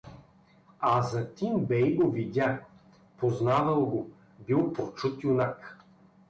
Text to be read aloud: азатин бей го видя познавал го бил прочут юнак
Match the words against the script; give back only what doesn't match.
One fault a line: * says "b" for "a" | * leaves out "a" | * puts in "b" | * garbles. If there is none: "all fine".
all fine